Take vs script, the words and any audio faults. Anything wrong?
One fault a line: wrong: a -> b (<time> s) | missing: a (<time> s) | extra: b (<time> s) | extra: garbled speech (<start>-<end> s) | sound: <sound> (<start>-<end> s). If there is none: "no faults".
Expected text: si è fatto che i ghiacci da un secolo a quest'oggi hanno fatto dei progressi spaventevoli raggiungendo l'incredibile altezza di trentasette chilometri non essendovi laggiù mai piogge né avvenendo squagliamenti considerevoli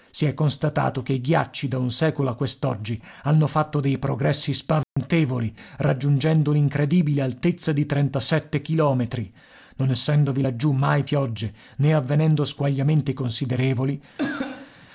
wrong: fatto -> constatato (0.3 s)
sound: dropout (4.8-5.0 s)
sound: cough (14.2-14.9 s)